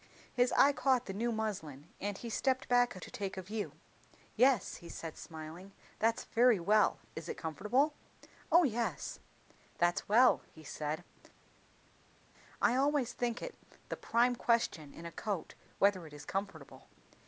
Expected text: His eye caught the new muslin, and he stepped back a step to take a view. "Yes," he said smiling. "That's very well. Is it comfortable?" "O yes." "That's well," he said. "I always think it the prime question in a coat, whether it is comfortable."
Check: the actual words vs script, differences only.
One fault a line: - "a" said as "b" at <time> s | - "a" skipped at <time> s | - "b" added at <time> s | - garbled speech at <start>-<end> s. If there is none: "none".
- "step" skipped at 3.0 s